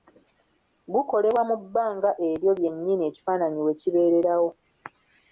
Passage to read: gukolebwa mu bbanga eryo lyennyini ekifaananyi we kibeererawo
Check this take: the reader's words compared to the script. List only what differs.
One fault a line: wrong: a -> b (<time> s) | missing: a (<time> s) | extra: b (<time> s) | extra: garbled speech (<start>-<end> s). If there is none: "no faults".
no faults